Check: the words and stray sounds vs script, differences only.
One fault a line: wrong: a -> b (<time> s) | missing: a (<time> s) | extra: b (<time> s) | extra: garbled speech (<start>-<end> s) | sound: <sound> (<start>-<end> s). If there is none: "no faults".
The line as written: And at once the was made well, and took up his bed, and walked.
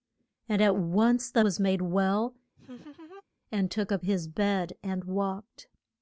sound: laugh (2.6-3.2 s)